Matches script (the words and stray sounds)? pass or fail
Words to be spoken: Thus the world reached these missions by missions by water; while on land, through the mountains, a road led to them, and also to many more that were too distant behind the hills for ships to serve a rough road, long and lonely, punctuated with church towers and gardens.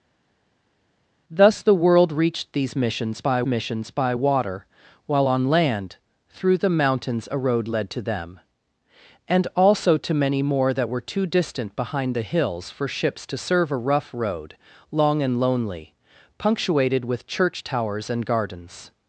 pass